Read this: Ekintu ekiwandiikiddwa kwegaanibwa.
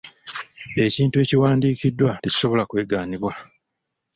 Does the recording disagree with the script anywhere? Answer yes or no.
yes